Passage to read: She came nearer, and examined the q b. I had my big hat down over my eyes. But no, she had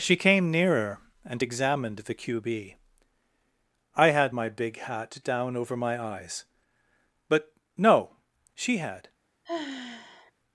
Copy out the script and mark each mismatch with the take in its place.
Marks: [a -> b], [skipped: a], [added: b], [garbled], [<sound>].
She came nearer, and examined the q b. I had my big hat down over my eyes. But no, she had [sigh]